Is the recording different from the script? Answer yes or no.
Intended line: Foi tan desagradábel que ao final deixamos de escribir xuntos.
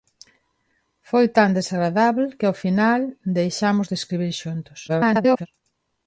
yes